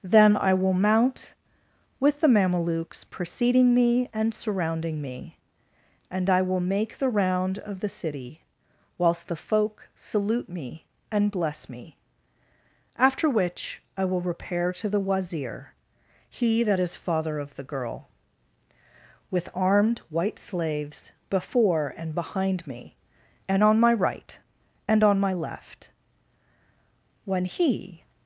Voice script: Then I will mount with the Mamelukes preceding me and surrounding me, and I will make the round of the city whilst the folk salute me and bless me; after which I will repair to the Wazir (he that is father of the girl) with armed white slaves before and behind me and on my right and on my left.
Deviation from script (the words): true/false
true